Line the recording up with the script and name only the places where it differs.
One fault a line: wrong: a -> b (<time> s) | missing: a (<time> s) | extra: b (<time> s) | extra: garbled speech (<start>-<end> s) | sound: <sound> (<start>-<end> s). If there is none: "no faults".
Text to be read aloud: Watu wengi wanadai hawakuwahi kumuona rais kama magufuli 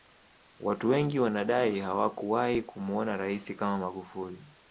no faults